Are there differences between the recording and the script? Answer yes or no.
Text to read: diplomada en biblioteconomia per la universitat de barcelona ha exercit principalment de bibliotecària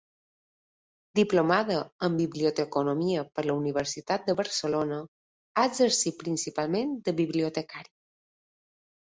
no